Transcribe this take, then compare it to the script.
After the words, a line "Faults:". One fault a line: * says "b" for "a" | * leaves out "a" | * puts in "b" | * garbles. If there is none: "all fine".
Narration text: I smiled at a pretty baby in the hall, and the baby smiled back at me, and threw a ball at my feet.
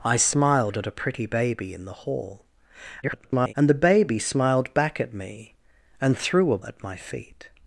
I smiled at a pretty baby in the hall, [garbled] and the baby smiled back at me, and threw a at my feet.
Faults:
* garbles
* leaves out "ball"